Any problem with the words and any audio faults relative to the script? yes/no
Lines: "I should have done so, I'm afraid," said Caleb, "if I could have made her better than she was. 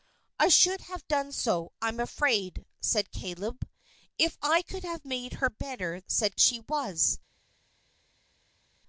yes